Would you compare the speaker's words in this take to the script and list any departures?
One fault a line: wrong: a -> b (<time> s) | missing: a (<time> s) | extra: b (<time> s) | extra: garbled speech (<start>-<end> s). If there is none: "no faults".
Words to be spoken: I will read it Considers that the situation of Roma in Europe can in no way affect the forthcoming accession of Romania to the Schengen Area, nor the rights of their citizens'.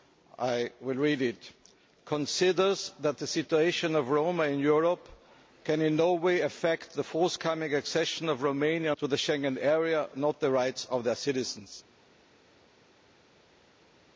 no faults